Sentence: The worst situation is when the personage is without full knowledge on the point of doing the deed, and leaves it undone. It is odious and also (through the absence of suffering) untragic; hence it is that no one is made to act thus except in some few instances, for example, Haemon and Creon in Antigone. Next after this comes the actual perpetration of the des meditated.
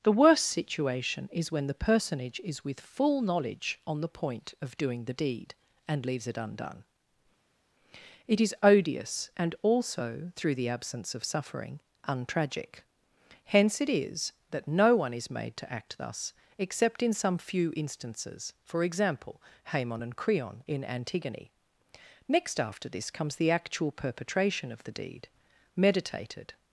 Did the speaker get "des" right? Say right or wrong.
wrong